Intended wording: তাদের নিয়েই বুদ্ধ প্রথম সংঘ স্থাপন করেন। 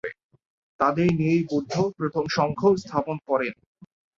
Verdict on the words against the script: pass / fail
pass